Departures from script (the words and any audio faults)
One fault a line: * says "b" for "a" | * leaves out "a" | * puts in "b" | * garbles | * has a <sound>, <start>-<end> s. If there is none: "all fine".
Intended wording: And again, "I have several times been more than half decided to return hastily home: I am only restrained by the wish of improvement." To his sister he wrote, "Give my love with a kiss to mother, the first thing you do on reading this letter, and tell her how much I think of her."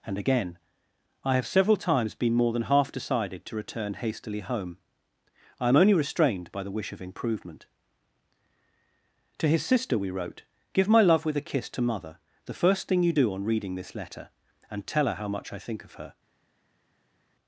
* says "we" for "he"